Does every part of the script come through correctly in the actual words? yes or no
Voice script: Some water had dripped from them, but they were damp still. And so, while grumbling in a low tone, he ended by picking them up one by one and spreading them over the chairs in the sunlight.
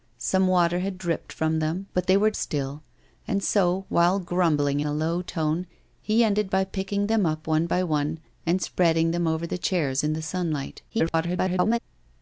no